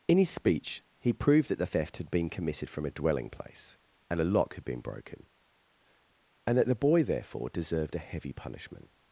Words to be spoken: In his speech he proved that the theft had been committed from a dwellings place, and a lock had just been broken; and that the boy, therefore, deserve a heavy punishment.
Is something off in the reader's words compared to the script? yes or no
yes